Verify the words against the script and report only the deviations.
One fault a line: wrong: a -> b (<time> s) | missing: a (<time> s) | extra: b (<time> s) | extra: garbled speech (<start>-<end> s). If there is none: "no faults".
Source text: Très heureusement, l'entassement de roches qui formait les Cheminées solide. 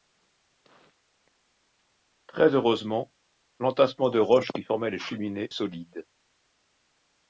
no faults